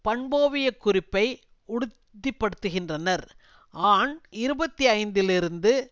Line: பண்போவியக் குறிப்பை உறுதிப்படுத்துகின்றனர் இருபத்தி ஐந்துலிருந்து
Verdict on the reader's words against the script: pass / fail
fail